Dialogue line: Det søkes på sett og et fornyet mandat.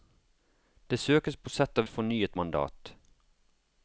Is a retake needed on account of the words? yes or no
no